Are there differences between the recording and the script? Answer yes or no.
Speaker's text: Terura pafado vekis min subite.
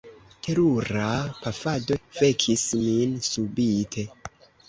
no